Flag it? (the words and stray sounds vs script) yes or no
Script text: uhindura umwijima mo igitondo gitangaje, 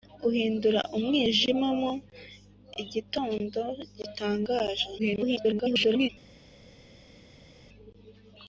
yes